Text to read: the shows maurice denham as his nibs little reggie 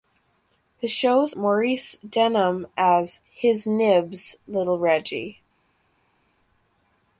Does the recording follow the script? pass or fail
pass